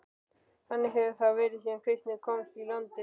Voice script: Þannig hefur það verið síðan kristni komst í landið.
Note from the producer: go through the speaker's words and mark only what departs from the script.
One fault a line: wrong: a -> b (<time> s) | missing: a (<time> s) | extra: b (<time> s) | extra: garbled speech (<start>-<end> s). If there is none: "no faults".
no faults